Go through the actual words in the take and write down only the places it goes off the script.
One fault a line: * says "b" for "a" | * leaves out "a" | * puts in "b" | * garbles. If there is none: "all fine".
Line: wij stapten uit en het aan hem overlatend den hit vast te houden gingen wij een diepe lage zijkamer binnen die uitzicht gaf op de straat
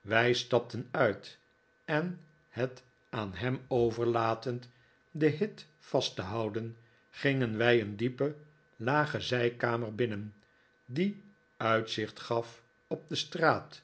all fine